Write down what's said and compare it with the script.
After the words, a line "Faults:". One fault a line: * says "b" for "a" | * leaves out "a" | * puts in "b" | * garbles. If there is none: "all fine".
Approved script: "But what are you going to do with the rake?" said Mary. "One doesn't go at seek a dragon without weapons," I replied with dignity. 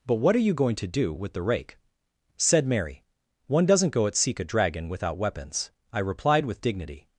"But what are you going to do with the rake?" said Mary. "One doesn't go at seek a dragon without weapons," I replied with dignity.
Faults:
all fine